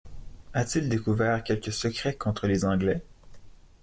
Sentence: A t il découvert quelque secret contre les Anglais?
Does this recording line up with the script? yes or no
yes